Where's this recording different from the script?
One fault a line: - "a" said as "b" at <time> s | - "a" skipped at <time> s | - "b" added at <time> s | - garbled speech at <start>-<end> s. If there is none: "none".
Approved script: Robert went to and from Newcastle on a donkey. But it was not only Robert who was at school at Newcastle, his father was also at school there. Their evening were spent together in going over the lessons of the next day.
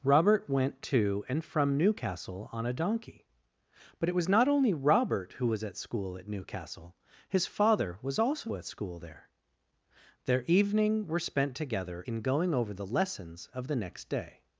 none